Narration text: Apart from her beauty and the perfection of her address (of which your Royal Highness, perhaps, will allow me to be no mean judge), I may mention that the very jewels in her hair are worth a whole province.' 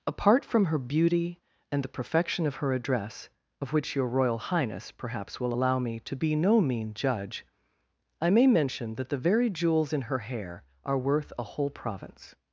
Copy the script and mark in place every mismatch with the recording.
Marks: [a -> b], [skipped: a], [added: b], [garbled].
Apart from her beauty and the perfection of her address (of which your Royal Highness, perhaps, will allow me to be no mean judge), I may mention that the very jewels in her hair are worth a whole province.'